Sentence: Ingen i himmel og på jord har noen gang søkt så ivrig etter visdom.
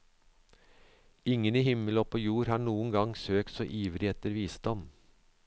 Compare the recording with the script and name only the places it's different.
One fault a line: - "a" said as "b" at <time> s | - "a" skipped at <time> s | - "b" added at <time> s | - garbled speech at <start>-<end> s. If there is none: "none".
none